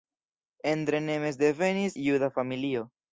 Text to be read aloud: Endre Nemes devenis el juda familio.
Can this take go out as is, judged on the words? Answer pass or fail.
fail